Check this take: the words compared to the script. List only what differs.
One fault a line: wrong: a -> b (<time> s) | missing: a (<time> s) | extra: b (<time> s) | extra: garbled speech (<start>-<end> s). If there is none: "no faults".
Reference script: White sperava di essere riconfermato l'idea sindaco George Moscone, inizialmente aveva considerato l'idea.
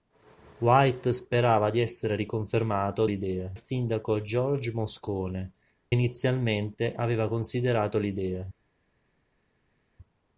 no faults